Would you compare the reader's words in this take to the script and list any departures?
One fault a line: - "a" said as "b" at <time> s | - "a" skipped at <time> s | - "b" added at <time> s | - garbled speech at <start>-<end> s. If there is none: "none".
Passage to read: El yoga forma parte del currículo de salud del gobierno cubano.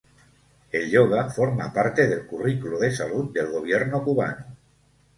none